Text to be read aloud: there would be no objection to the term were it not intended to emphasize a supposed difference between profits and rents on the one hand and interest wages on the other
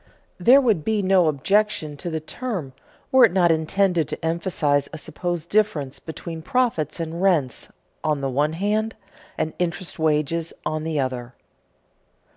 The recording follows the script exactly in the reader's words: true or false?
true